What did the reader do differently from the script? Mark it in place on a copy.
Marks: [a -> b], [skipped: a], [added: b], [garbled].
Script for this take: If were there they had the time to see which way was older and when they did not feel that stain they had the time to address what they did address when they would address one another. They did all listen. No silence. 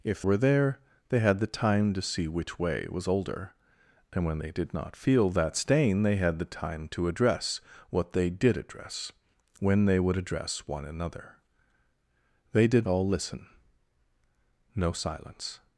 If were there they had the time to see which way was older and when they did not feel that stain they had the time to address what they did address when they would address one another. They did all listen. No silence.